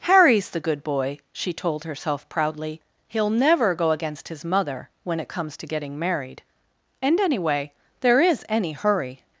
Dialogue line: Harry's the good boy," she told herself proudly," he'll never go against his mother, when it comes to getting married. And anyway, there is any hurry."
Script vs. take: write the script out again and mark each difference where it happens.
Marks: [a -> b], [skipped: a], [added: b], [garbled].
Harry's the good boy," she told herself proudly," he'll never go against his mother, when it comes to getting married. And anyway, there is any hurry."